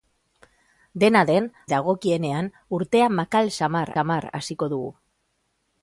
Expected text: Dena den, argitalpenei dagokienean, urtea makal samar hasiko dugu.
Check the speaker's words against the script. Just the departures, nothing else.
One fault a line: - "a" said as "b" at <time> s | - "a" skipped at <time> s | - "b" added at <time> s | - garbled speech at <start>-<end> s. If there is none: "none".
- "argitalpenei" skipped at 1.5 s
- "samar" added at 4.0 s